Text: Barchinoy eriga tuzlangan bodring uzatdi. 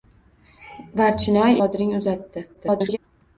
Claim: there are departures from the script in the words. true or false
true